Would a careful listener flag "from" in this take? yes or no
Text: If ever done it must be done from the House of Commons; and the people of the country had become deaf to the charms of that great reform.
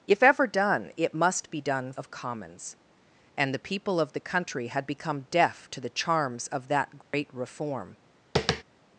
yes